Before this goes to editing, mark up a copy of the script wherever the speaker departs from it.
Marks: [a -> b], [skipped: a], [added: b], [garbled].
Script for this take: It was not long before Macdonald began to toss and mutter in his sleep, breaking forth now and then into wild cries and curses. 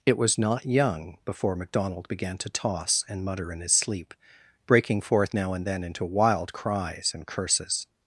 It was not [long -> young] before Macdonald began to toss and mutter in his sleep, breaking forth now and then into wild cries and curses.